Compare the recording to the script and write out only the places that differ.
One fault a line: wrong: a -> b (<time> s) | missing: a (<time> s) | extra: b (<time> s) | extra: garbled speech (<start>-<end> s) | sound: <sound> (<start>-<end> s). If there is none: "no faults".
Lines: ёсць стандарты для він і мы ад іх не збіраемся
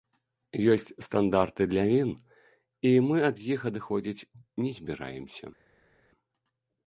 extra: адыходзіць (3.7 s)